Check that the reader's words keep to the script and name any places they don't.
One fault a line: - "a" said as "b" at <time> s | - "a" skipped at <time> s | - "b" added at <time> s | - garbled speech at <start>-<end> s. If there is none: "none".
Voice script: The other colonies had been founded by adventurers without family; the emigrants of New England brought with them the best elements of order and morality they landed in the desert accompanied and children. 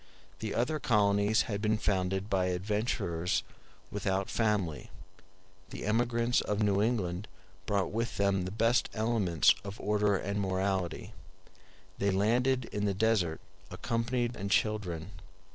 none